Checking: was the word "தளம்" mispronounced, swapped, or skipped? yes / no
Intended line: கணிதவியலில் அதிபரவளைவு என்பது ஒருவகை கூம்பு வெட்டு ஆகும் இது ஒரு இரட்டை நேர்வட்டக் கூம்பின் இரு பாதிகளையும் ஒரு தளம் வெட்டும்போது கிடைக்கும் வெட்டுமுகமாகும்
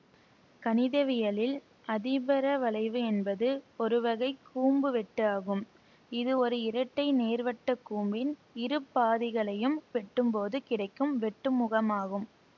yes